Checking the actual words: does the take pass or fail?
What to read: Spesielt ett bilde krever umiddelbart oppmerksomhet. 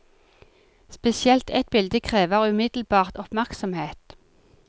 pass